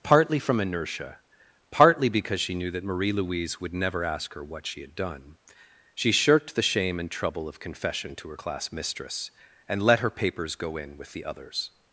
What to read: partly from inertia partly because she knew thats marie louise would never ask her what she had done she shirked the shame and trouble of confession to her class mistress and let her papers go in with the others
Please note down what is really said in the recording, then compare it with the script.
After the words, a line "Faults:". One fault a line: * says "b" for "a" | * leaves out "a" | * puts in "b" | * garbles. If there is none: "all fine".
partly from inertia partly because she knew that marie louise would never ask her what she had done she shirked the shame and trouble of confession to her class mistress and let her papers go in with the others
Faults:
* says "that" for "thats"